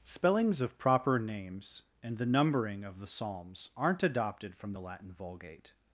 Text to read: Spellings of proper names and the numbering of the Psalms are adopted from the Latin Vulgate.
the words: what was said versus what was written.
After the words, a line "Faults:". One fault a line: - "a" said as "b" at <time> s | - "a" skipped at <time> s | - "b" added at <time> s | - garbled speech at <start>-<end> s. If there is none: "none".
Spellings of proper names and the numbering of the Psalms aren't adopted from the Latin Vulgate.
Faults:
- "are" said as "aren't" at 3.8 s